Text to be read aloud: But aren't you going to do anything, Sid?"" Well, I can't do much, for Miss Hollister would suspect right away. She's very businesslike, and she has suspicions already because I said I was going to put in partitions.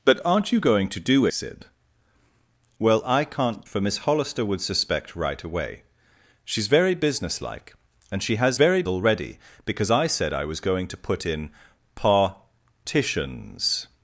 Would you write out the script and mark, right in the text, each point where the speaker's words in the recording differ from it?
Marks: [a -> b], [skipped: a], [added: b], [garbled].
But aren't you going to do [skipped: anything,] Sid?"" Well, I can't [skipped: do much,] for Miss Hollister would suspect right away. She's very businesslike, and she has [suspicions -> very] already because I said I was going to put in partitions.